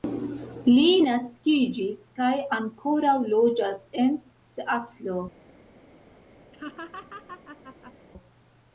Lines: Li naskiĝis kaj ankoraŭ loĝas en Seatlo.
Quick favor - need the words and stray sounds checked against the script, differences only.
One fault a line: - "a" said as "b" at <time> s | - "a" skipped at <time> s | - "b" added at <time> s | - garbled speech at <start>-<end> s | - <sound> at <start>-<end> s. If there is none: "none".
- laugh at 6.5-7.9 s